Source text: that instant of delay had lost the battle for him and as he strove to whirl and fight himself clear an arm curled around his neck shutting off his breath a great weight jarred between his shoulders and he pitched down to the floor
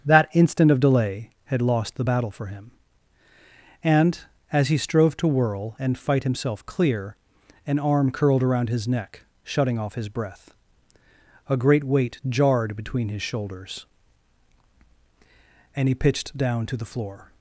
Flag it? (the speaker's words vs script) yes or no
no